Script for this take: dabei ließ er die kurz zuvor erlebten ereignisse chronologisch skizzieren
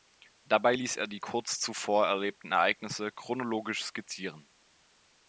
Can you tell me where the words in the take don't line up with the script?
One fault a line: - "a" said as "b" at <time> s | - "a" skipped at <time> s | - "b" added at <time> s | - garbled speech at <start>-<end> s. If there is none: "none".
none